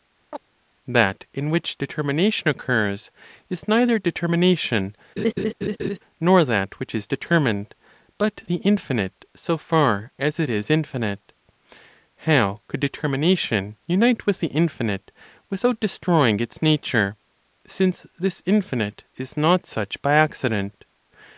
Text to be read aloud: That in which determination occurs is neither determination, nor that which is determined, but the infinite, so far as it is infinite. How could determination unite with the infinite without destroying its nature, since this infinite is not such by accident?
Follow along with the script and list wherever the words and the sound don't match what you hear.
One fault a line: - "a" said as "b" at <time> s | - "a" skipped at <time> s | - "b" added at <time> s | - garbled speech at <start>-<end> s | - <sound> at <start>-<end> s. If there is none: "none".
- chirp at 0.3-0.4 s
- laugh at 5.2-6.0 s